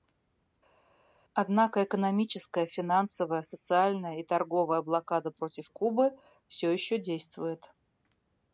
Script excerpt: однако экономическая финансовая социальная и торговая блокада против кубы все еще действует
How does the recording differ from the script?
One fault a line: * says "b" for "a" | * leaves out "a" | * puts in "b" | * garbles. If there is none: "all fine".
all fine